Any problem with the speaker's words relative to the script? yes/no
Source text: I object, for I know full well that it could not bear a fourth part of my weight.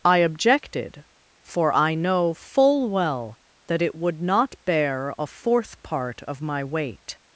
yes